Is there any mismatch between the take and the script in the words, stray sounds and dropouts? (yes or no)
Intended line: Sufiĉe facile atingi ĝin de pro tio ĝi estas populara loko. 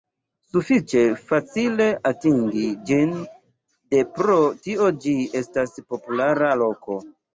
no